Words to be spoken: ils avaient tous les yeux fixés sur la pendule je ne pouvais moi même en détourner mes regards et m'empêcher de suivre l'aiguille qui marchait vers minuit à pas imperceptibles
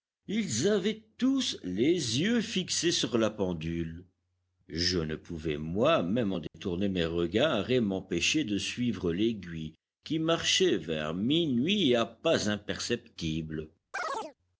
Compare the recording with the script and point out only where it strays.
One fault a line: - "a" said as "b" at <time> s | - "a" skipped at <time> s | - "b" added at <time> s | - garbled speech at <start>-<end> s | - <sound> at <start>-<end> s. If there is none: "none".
- dropout at 6.5-6.5 s
- chirp at 13.9-14.4 s